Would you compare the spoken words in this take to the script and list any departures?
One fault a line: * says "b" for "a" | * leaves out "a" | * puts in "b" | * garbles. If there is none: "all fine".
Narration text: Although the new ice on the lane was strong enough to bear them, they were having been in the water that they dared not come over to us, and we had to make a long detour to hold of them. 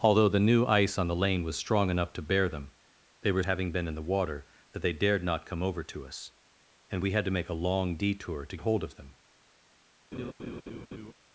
all fine